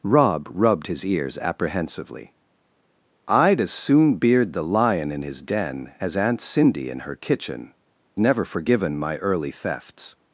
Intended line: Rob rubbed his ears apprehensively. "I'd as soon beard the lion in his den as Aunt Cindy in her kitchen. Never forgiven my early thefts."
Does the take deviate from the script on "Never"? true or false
false